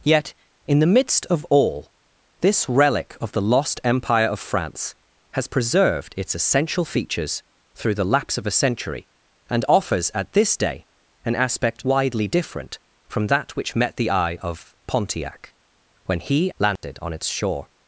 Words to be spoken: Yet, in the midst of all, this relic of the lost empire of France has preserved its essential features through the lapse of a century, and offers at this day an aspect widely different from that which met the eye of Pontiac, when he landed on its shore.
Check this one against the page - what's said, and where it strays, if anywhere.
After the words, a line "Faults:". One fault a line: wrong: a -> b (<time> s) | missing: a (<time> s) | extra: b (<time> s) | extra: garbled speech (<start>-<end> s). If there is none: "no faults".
Yet, in the midst of all, this relic of the lost empire of France has preserved its essential features through the lapse of a century, and offers at this day an aspect widely different from that which met the eye of Pontiac, when he landed on its shore.
Faults:
no faults